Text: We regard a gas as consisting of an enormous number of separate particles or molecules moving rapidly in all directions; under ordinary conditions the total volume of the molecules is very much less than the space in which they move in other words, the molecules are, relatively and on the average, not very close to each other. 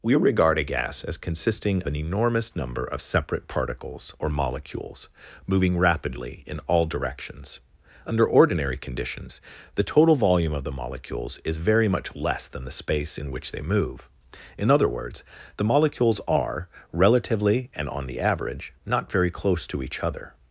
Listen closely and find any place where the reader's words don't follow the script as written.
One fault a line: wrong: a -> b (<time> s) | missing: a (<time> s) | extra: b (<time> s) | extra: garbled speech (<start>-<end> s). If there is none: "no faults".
missing: of (1.8 s)